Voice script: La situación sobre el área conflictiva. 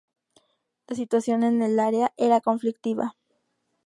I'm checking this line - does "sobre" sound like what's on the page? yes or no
no